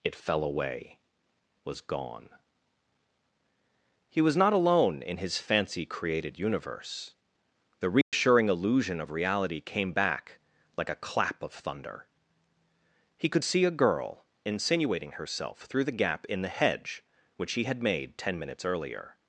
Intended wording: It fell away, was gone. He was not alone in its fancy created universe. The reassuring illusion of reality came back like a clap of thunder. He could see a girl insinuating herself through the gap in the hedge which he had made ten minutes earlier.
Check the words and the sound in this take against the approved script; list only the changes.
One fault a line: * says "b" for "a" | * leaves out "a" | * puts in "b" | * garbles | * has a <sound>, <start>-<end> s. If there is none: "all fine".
* says "his" for "its"
* has a dropout, 8.0-8.1 s